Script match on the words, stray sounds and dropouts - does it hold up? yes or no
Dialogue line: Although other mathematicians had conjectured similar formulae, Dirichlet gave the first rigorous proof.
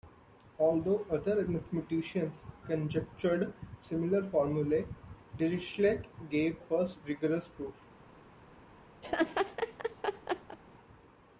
no